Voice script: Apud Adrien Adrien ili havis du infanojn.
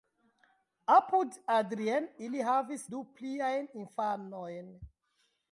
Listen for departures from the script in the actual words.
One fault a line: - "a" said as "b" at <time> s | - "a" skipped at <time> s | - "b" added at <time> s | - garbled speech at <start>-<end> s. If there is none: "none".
- "Adrien" skipped at 2.1 s
- "pliajn" added at 3.2 s